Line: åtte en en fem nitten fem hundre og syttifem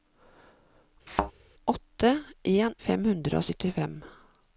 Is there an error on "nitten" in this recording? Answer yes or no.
yes